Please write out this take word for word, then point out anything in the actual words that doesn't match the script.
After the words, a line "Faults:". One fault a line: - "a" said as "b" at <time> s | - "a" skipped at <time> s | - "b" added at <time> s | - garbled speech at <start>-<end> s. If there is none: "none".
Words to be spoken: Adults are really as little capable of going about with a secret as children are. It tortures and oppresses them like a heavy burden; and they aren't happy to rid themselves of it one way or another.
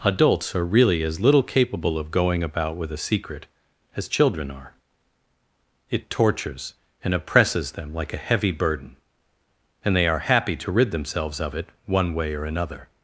Adults are really as little capable of going about with a secret as children are. It tortures and oppresses them like a heavy burden; and they are happy to rid themselves of it one way or another.
Faults:
- "aren't" said as "are" at 10.1 s